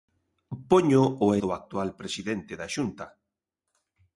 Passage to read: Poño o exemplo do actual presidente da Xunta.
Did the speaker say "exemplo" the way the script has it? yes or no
no